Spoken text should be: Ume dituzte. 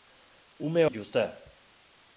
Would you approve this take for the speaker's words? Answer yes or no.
yes